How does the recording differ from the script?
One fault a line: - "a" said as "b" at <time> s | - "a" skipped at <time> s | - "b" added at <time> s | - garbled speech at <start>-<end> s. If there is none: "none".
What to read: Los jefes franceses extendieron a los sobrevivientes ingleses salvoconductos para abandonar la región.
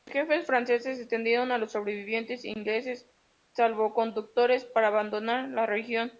none